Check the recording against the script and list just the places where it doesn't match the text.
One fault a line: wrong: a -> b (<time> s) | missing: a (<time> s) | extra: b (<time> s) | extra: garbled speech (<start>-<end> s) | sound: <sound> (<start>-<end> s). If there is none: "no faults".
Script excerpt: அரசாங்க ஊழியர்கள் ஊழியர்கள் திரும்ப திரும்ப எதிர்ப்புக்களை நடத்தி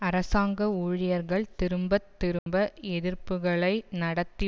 missing: ஊழியர்கள் (1.4 s)
sound: dropout (2.4-2.5 s)